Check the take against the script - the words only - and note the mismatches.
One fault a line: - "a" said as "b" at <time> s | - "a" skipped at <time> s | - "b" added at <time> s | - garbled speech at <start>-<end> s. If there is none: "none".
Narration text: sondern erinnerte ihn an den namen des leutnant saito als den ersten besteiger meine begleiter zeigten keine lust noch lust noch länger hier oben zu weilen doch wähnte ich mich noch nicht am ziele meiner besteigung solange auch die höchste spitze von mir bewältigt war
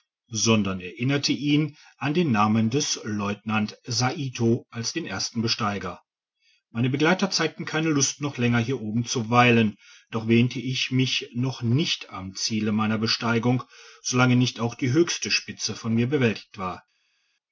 - "lust noch" skipped at 8.4 s
- "nicht" added at 14.4 s